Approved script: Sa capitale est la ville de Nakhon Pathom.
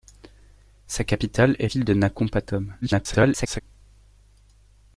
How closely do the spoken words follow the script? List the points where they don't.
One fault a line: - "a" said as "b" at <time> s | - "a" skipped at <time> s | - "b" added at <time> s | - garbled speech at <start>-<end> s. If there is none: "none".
- "la" skipped at 1.7 s
- garbled speech at 2.8-3.6 s